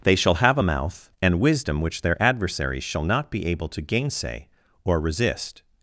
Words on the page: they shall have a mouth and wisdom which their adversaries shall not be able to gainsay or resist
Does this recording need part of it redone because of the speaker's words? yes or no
no